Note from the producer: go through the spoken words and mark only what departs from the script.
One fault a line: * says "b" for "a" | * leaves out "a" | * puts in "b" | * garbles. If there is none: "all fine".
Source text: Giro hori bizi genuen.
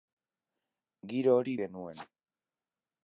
* leaves out "bizi"